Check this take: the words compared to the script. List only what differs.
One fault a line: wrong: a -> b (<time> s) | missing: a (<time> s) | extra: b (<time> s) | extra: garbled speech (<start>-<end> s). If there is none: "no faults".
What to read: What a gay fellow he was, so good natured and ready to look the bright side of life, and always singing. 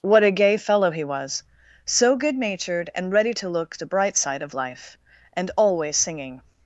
no faults